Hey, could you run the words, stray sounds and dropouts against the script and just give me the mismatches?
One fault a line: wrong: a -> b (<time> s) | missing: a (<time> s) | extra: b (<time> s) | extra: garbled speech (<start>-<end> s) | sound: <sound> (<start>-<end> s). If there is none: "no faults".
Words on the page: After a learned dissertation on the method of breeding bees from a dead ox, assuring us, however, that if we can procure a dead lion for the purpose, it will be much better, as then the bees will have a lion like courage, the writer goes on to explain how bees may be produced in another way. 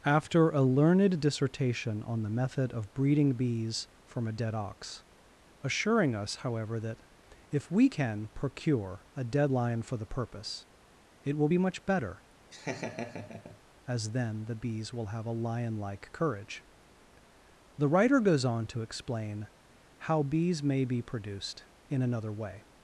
sound: laugh (12.5-13.6 s)